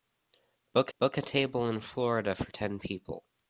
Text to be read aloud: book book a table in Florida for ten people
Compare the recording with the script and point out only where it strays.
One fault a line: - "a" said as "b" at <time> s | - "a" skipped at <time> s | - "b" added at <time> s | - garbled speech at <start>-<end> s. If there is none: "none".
none